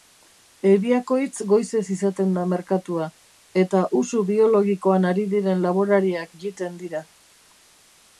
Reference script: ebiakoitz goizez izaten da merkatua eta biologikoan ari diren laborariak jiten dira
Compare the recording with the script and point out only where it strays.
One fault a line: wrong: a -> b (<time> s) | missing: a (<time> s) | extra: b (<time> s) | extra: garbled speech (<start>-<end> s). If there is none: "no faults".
extra: usu (4.0 s)